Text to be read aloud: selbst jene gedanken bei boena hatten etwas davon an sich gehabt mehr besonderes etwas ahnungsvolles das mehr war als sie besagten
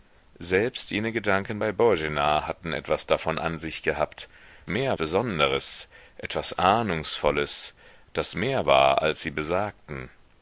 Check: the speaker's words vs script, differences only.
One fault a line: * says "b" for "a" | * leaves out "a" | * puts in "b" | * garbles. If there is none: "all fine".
all fine